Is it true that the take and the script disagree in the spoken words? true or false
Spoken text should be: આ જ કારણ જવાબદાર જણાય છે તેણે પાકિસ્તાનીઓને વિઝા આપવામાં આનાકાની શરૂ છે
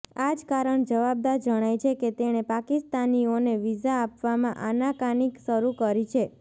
true